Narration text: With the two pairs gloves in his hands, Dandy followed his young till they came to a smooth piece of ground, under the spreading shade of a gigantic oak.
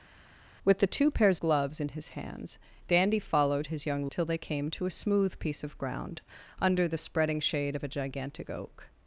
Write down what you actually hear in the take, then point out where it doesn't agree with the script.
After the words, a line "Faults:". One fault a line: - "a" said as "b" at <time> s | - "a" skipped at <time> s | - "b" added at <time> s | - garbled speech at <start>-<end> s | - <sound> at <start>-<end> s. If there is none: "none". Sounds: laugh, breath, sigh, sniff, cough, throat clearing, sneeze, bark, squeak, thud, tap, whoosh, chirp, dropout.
With the two pairs gloves in his hands, Dandy followed his young till they came to a smooth piece of ground, under the spreading shade of a gigantic oak.
Faults:
none